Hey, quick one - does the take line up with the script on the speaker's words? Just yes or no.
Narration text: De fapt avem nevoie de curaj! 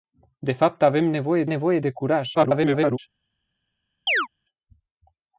no